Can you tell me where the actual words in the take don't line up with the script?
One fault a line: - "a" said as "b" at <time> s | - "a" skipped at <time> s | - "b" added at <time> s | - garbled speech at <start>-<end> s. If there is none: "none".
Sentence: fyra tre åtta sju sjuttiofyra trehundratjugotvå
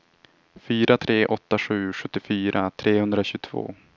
none